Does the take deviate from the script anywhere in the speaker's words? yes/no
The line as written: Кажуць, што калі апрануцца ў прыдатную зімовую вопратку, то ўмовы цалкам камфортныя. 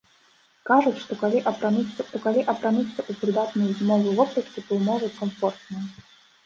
yes